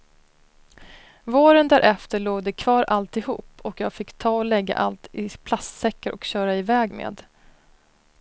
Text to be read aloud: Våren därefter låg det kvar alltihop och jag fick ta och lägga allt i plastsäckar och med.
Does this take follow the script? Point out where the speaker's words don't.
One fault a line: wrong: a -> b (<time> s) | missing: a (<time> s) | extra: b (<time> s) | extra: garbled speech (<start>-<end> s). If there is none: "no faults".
extra: köra iväg (6.2 s)